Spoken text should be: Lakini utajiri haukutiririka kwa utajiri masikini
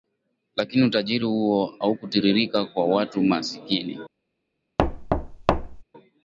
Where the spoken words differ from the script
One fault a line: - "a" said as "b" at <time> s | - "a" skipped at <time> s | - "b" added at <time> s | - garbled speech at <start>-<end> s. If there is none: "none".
- "huo" added at 1.2 s
- "utajiri" said as "watu" at 2.9 s